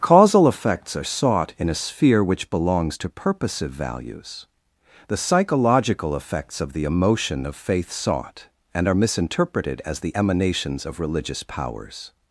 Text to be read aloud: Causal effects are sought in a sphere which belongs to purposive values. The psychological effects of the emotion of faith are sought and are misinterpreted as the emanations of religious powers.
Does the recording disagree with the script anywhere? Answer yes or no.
yes